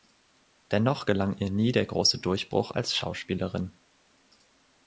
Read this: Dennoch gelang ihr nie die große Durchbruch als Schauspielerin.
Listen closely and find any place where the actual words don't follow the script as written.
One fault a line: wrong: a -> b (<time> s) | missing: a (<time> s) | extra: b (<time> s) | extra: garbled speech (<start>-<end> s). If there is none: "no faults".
wrong: die -> der (1.7 s)